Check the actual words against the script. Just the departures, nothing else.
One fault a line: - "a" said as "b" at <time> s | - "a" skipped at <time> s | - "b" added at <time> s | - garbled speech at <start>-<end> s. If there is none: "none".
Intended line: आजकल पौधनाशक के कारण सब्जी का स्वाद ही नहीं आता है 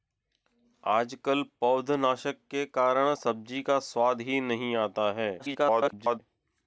- garbled speech at 5.4-6.2 s